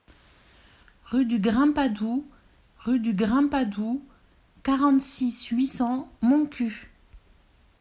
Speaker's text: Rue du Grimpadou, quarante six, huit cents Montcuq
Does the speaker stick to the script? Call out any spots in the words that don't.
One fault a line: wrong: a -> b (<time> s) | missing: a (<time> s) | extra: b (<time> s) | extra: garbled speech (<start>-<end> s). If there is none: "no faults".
extra: rue du Grimpadou (2.8 s)